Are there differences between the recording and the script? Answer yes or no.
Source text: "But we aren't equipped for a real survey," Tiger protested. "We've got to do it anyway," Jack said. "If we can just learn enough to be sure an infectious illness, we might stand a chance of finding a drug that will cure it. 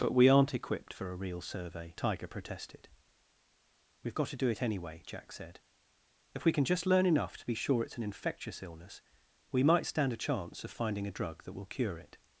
yes